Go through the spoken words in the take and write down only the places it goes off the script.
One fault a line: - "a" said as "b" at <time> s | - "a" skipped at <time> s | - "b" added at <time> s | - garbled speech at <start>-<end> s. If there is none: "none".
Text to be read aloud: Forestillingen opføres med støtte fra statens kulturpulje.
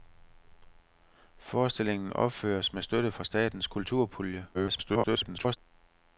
- garbled speech at 4.5-5.6 s